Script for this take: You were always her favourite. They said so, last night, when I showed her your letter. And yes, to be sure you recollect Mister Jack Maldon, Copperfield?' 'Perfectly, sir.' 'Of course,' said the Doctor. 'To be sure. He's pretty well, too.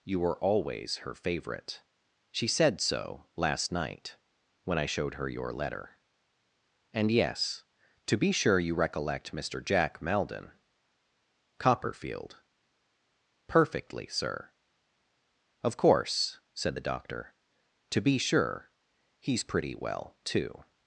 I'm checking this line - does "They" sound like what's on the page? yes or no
no